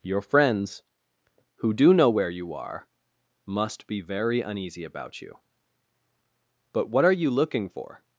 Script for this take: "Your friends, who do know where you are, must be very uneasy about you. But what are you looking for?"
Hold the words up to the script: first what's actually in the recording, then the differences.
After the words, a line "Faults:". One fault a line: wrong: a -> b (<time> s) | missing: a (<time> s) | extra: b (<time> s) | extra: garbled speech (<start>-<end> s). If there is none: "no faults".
"Your friends, who do know where you are, must be very uneasy about you. But what are you looking for?"
Faults:
no faults